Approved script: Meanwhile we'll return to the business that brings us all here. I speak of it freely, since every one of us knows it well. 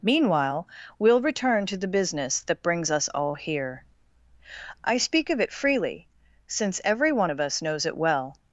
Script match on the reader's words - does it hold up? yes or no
yes